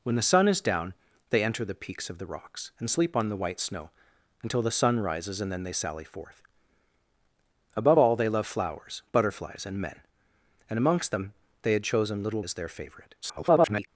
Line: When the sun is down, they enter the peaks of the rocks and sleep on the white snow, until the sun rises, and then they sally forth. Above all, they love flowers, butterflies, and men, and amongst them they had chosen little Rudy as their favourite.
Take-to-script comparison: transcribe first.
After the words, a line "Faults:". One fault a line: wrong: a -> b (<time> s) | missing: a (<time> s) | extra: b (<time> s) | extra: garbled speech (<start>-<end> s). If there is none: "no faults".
When the sun is down, they enter the peaks of the rocks and sleep on the white snow, until the sun rises, and then they sally forth. Above all, they love flowers, butterflies, and men, and amongst them they had chosen little As their favourite. [garbled]
Faults:
missing: Rudy (12.4 s)
extra: garbled speech (13.2-13.9 s)